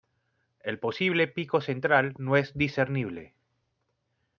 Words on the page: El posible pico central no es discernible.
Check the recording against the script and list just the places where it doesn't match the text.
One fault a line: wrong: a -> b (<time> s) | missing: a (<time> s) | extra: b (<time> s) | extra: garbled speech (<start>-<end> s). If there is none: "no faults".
no faults